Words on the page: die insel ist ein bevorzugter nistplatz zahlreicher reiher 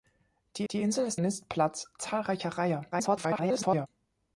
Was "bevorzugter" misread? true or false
true